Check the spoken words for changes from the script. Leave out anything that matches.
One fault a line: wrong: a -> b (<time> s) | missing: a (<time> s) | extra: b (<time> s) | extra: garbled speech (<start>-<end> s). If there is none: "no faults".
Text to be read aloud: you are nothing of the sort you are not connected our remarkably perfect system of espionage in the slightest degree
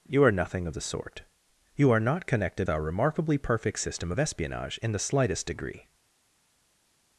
no faults